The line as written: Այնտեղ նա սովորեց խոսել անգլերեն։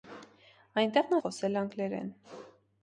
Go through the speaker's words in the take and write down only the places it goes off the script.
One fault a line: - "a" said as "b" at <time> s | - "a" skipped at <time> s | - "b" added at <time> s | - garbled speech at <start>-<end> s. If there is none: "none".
- "սովորեց" skipped at 1.2 s